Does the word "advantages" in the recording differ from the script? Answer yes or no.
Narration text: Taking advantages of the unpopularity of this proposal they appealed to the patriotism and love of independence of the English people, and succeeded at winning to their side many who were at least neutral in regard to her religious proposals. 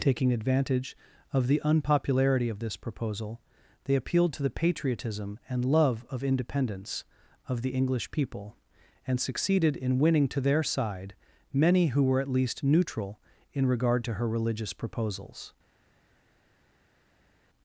yes